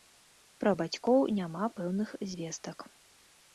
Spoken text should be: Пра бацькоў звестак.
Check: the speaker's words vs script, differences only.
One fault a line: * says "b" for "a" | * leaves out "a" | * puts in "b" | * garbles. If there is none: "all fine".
* puts in "няма пэўных"